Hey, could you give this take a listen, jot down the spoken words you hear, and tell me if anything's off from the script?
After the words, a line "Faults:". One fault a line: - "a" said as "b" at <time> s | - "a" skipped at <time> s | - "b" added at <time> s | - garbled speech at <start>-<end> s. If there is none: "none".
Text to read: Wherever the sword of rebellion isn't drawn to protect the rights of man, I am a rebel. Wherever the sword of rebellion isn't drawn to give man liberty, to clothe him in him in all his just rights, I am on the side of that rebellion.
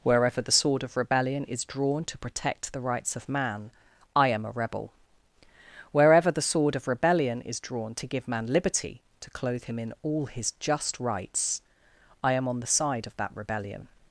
Wherever the sword of rebellion is drawn to protect the rights of man, I am a rebel. Wherever the sword of rebellion is drawn to give man liberty, to clothe him in all his just rights, I am on the side of that rebellion.
Faults:
- "isn't" said as "is" at 1.4 s
- "isn't" said as "is" at 7.4 s
- "him in" skipped at 9.9 s